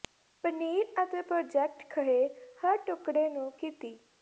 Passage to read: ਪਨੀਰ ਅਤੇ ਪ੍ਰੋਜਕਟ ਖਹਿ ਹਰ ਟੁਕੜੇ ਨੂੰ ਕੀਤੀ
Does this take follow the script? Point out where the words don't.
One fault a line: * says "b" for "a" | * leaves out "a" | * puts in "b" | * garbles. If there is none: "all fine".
all fine